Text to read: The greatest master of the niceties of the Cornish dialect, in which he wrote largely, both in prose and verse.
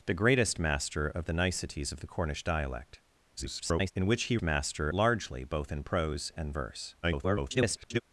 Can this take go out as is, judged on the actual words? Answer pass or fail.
fail